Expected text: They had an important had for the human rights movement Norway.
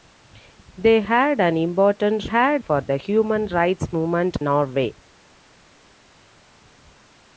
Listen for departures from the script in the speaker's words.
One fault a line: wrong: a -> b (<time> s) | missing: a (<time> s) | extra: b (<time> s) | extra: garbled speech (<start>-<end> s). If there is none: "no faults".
no faults